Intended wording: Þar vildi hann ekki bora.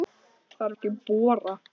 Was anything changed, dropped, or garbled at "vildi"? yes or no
yes